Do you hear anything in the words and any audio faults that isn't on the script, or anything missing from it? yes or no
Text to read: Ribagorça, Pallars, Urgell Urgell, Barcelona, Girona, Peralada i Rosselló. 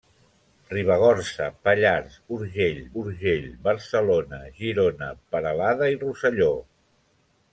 no